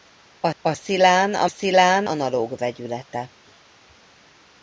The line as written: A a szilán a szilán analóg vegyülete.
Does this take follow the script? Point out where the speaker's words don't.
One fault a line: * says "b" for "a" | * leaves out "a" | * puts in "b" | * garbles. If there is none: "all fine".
all fine